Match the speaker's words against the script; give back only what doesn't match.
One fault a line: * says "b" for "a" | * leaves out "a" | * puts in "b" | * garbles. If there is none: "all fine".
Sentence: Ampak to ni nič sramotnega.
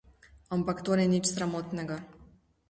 all fine